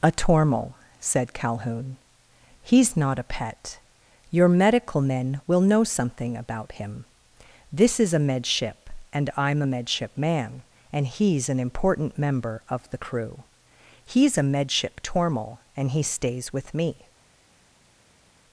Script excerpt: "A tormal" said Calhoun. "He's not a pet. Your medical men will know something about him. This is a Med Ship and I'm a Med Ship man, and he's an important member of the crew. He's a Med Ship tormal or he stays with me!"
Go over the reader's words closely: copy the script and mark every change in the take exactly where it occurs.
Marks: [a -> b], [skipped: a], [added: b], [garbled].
"A tormal" said Calhoun. "He's not a pet. Your medical men will know something about him. This is a Med Ship and I'm a Med Ship man, and he's an important member of the crew. He's a Med Ship tormal [or -> and] he stays with me!"